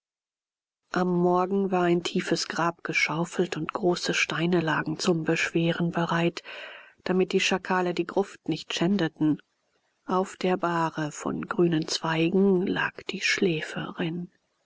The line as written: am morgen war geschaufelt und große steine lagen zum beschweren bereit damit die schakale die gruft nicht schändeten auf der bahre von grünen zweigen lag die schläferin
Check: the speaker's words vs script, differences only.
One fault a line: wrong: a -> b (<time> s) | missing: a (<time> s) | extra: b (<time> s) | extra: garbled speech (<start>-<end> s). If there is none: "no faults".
extra: ein tiefes grab (1.8 s)